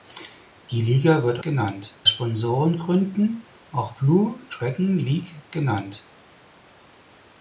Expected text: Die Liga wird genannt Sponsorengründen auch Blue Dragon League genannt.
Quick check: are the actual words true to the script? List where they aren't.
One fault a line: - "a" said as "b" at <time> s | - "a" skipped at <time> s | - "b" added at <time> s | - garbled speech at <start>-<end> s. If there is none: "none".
none